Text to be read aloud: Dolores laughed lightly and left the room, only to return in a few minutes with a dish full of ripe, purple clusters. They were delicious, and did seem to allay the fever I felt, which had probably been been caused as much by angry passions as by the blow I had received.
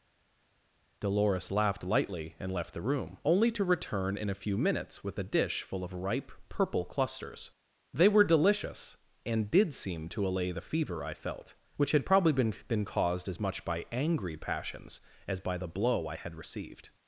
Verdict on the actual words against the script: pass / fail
pass